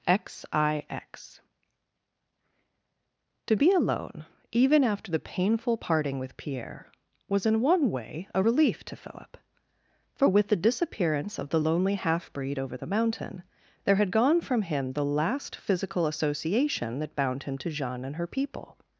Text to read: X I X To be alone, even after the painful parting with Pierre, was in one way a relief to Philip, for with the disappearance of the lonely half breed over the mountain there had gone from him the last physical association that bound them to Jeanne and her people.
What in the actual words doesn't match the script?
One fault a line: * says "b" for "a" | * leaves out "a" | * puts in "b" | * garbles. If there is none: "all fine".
* says "him" for "them"